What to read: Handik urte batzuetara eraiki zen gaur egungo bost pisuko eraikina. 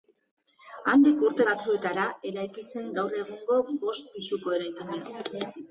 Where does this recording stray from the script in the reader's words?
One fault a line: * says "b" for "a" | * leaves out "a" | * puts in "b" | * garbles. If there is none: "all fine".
all fine